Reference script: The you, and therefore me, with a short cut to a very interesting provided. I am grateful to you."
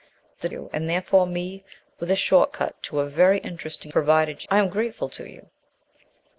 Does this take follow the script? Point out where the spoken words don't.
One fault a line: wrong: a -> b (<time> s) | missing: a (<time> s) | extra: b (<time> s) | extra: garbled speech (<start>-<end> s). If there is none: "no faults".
no faults